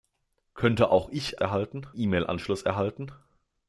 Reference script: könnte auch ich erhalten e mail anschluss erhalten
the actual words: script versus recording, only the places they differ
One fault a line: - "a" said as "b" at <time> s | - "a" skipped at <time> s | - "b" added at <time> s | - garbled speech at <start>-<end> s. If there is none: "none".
none